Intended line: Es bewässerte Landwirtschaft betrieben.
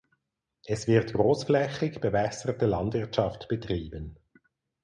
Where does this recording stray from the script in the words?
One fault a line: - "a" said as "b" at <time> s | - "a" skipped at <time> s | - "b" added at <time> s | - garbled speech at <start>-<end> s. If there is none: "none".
- "wird großflächig" added at 0.9 s